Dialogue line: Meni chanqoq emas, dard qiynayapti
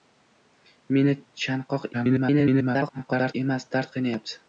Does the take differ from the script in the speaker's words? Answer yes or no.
yes